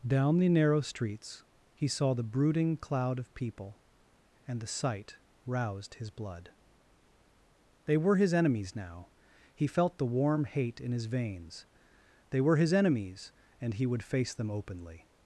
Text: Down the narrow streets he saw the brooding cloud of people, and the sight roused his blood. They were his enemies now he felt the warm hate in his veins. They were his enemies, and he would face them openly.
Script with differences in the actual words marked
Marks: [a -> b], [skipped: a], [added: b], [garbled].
Down the narrow streets he saw the brooding cloud of people, and the sight roused his blood. They were his enemies now he felt the warm hate in his veins. They were his enemies, and he would face them openly.